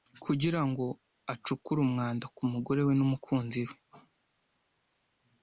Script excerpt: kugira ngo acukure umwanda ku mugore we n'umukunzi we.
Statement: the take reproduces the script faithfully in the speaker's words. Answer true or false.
true